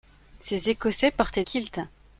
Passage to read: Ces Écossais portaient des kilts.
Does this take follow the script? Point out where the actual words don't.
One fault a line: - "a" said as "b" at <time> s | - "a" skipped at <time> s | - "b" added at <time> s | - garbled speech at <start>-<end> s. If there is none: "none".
- "des" skipped at 1.4 s